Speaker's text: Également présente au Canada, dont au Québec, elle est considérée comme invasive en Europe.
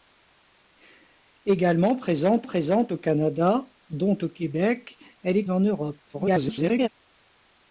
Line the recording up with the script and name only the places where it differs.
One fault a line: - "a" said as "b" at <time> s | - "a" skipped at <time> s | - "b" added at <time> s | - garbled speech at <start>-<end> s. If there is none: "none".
- "présente" added at 2.4 s
- "considérée comme invasive" skipped at 5.4 s
- garbled speech at 6.1-6.9 s